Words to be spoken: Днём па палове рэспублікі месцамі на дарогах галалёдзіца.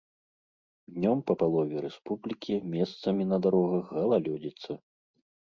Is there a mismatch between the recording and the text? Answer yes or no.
no